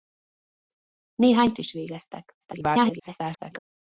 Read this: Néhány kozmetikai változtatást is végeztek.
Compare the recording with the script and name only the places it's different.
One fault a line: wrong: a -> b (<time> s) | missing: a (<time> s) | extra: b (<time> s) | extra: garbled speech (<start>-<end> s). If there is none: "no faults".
missing: kozmetikai változtatást (1.5 s)
extra: garbled speech (2.4-3.6 s)